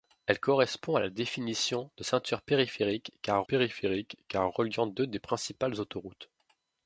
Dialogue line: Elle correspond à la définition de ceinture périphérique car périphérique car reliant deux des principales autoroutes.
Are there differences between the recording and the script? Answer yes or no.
no